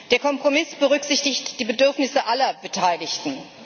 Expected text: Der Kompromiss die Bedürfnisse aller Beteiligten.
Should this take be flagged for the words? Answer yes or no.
yes